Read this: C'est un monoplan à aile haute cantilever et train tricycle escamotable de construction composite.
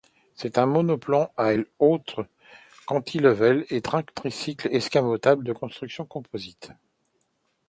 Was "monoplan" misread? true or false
false